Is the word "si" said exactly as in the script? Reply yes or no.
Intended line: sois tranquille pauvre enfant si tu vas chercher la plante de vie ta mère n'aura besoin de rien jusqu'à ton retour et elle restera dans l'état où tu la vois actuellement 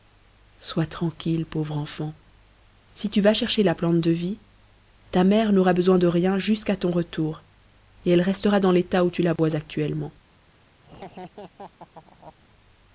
yes